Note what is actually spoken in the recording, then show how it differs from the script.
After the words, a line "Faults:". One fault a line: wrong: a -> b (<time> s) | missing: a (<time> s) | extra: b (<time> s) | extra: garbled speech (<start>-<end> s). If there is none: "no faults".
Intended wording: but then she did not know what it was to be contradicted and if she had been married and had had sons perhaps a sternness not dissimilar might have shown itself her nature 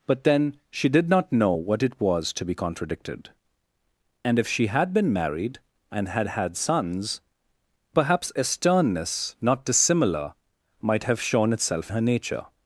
but then she did not know what it was to be contradicted and if she had been married and had had sons perhaps a sternness not dissimilar might have shown itself her nature
Faults:
no faults